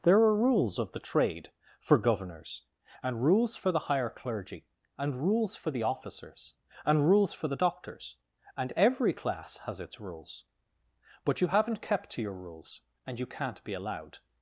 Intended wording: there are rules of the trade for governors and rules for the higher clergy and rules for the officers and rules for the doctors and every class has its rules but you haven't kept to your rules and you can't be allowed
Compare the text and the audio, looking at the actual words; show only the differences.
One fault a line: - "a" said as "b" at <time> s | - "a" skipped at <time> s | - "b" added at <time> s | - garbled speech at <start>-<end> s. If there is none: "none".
none